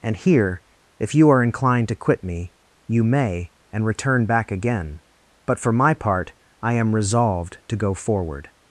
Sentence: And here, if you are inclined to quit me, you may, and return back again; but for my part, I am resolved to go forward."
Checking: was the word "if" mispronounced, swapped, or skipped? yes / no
no